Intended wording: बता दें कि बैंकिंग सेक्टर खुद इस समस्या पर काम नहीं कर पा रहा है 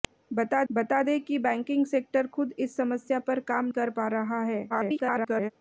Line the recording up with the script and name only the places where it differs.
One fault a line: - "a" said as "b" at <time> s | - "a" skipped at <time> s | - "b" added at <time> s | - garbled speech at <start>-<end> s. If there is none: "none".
- "बता" added at 0.7 s
- "नहीं" skipped at 3.6 s
- garbled speech at 4.7-5.5 s